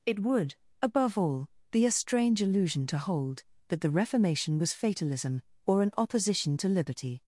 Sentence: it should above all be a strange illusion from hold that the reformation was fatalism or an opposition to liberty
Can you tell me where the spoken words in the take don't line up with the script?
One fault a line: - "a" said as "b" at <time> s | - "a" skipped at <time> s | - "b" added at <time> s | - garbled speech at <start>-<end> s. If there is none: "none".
- "should" said as "would" at 0.2 s
- "from" said as "to" at 2.9 s